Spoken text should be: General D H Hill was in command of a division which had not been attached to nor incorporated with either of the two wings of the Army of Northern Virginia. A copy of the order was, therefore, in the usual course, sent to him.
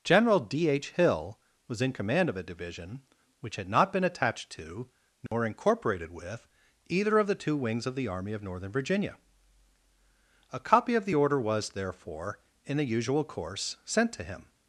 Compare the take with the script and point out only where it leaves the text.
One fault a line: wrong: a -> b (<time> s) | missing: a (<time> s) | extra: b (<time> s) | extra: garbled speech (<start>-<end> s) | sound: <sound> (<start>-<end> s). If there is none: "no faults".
sound: dropout (5.3-5.3 s)